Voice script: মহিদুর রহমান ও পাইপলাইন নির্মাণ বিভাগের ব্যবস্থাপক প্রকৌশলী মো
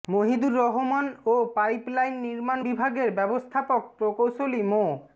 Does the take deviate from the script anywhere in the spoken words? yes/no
no